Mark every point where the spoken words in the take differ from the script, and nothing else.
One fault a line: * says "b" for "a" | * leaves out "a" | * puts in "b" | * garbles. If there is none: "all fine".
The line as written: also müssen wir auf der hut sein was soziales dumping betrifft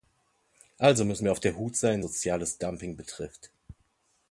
* leaves out "was"